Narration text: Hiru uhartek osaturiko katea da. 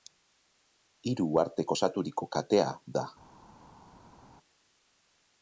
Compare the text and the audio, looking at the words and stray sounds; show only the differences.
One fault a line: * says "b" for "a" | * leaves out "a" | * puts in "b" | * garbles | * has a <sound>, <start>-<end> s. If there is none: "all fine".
all fine